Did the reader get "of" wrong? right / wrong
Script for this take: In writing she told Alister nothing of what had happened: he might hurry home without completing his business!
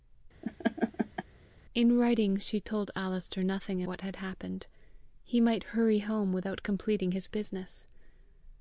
wrong